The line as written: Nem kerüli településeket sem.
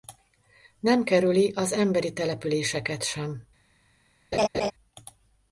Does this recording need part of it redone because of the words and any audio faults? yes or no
yes